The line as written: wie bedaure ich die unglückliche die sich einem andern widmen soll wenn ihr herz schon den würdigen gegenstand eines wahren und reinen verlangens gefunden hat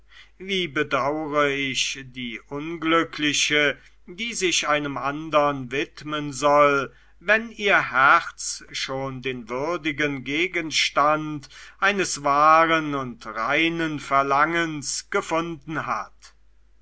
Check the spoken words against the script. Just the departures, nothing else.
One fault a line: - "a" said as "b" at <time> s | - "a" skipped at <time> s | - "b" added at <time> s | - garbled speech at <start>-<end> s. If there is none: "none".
none